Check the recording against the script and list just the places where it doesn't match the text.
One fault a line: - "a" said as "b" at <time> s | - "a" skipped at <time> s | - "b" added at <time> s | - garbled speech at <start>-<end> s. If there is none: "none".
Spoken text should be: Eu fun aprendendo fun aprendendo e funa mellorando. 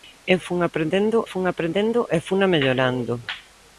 none